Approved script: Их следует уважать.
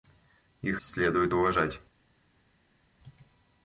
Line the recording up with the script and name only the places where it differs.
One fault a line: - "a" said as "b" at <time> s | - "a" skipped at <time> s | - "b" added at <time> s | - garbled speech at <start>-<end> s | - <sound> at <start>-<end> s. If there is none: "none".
none